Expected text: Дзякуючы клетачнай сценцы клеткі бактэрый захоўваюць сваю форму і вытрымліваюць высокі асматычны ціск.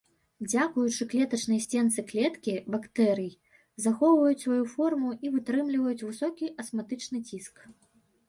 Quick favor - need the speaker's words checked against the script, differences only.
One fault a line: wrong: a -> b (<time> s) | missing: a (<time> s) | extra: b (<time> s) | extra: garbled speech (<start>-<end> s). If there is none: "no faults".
no faults